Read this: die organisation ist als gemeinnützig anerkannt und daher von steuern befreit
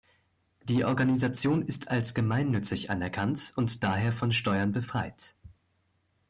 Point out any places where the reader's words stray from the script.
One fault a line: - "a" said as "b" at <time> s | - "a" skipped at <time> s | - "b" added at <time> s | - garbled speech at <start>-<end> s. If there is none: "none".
none